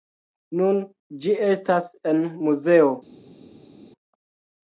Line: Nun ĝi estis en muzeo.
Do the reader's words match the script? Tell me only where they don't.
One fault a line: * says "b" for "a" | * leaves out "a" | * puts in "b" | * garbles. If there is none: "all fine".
* says "estas" for "estis"